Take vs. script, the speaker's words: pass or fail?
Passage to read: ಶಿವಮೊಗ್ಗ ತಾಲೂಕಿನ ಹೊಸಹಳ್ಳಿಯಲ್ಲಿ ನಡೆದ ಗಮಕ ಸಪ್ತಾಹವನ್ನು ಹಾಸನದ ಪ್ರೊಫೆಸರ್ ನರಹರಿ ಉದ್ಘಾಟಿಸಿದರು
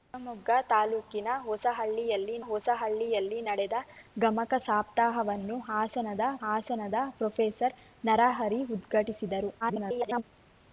fail